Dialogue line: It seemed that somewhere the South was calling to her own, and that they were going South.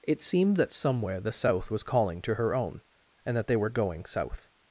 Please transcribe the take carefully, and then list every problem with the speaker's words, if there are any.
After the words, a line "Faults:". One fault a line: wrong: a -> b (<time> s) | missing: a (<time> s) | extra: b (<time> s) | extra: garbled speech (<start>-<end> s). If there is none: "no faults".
It seemed that somewhere the South was calling to her own, and that they were going South.
Faults:
no faults